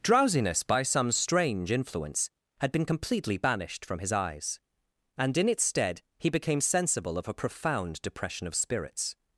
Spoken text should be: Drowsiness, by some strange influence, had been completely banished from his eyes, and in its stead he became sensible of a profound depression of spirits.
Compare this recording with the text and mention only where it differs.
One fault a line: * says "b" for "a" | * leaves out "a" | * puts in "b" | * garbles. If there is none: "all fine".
all fine